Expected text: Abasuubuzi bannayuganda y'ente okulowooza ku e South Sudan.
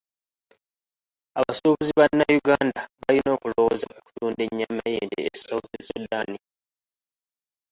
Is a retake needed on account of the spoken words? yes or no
yes